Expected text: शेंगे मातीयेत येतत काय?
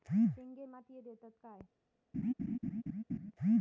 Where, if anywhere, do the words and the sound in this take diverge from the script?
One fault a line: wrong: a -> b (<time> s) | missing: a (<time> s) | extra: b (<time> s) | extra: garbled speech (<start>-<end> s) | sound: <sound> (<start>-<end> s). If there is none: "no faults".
sound: laugh (2.1-3.3 s)